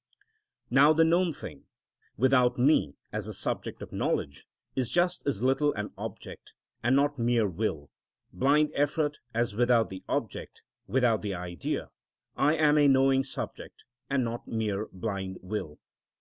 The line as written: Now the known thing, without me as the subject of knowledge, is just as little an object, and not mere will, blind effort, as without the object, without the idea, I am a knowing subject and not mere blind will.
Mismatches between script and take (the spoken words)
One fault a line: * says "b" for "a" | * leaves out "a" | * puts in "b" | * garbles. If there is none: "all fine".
all fine